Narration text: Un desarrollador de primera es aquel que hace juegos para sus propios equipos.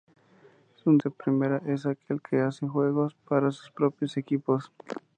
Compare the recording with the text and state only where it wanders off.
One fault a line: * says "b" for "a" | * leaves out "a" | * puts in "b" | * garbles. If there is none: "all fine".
* leaves out "desarrollador"